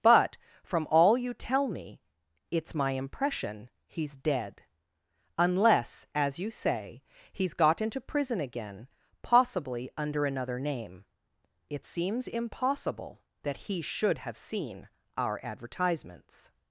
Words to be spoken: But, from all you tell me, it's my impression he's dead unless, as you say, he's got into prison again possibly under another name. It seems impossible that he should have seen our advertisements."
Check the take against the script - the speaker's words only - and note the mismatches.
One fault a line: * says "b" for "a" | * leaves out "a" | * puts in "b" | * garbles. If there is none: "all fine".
all fine